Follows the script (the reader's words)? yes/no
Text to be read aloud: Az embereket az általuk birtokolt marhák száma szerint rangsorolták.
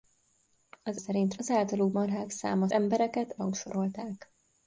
no